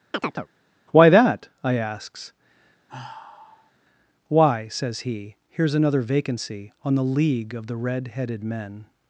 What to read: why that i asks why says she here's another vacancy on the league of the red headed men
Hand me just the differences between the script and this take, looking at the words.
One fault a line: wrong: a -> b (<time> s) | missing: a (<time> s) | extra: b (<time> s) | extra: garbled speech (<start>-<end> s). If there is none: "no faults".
wrong: she -> he (5.0 s)